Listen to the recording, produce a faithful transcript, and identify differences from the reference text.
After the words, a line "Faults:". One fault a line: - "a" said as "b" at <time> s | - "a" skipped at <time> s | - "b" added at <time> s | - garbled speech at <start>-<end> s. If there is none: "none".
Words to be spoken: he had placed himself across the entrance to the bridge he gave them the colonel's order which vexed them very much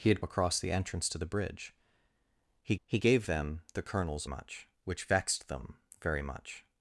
he had across the entrance to the bridge he he gave them the colonel's much which vexed them very much
Faults:
- "placed himself" skipped at 0.2 s
- "he" added at 2.8 s
- "order" said as "much" at 4.2 s